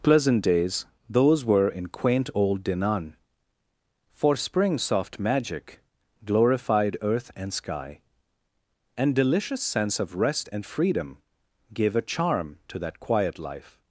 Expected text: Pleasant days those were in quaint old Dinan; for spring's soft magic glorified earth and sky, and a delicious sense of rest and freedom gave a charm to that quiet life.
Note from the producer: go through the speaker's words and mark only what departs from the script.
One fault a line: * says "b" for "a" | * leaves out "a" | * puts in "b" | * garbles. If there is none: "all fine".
* leaves out "a"